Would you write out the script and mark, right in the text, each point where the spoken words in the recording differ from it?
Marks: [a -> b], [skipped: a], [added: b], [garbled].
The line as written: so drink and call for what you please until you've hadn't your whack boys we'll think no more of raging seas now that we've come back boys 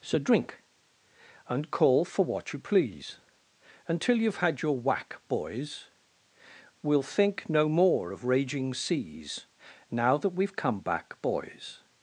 so drink and call for what you please until you've [hadn't -> had] your whack boys we'll think no more of raging seas now that we've come back boys